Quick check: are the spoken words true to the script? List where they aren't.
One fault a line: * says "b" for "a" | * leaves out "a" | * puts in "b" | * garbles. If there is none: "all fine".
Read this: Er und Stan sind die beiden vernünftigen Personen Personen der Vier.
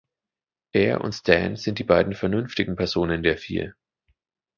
* leaves out "Personen"